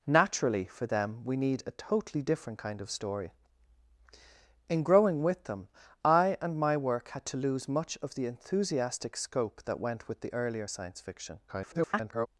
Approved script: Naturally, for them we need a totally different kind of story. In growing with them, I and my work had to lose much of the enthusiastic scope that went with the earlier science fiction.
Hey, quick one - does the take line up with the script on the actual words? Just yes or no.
no